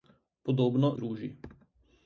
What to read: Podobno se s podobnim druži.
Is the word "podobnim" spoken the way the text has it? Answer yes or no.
no